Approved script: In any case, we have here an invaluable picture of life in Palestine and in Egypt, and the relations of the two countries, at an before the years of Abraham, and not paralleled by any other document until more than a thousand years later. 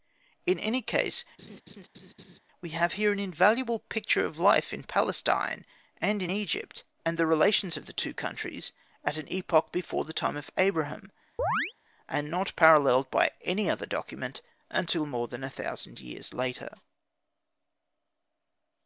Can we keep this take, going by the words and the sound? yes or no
no